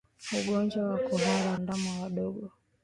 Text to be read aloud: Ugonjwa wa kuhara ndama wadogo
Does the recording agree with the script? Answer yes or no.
yes